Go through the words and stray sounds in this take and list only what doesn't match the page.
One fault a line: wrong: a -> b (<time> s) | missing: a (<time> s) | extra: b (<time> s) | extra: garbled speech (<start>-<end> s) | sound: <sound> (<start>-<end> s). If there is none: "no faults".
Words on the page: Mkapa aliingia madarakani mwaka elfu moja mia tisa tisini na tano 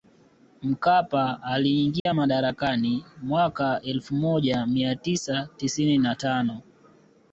sound: dropout (2.0-2.1 s)